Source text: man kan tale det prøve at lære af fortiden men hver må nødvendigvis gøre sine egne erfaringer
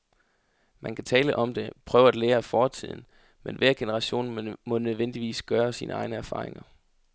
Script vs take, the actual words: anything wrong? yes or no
yes